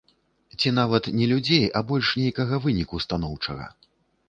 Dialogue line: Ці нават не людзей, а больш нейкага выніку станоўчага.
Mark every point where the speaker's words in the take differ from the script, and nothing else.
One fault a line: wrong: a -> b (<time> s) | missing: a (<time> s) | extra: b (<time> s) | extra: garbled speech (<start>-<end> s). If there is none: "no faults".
no faults